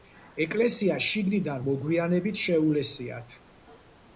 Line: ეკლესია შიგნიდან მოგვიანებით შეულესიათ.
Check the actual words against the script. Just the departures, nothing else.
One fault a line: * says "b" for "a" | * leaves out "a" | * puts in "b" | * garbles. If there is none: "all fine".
all fine